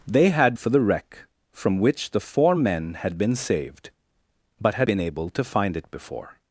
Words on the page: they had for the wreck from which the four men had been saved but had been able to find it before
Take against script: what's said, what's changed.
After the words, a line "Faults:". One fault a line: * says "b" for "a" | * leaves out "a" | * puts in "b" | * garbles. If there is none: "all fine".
they had for the wreck from which the four men had been saved but had been able to find it before
Faults:
all fine